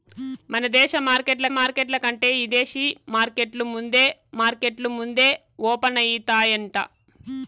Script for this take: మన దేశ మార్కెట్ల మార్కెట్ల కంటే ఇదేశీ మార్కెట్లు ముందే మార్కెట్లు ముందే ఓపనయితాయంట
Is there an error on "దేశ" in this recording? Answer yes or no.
no